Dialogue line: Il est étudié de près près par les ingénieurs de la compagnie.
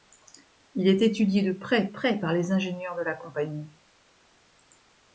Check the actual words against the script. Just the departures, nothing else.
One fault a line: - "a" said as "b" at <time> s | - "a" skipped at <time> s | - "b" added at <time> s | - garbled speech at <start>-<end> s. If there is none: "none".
none